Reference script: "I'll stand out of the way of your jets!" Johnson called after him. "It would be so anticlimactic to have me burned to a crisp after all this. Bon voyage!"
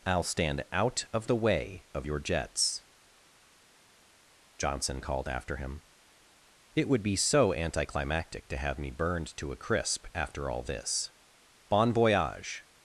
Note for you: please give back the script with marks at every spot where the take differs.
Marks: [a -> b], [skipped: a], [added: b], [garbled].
"I'll stand out of the way of your jets!" Johnson called after him. "It would be so anticlimactic to have me burned to a crisp after all this. Bon voyage!"